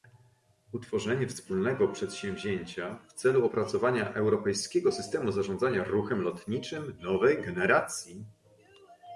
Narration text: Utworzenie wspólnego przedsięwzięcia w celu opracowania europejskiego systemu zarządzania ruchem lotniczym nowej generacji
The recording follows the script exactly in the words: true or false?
true